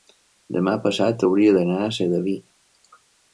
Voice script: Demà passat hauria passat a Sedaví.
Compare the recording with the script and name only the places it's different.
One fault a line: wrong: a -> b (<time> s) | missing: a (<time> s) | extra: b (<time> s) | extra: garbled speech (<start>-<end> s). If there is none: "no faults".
wrong: passat -> d'anar (1.6 s)